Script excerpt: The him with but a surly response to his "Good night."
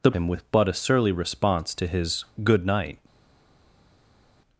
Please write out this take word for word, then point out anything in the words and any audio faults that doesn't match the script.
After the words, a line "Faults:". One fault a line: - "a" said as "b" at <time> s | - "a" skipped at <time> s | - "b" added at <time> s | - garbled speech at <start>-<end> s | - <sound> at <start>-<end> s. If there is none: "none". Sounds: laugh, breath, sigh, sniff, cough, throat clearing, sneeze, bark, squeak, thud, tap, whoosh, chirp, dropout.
The him with but a surly response to his "Good night."
Faults:
none